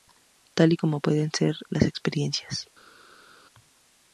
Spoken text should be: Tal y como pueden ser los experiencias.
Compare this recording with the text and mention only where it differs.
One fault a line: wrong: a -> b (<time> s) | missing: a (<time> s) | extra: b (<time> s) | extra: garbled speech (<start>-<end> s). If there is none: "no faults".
wrong: los -> las (1.7 s)